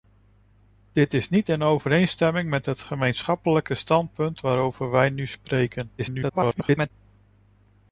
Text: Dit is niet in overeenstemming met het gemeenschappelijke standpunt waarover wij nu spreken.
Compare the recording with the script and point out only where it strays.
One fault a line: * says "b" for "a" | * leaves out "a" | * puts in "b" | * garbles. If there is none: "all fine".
* garbles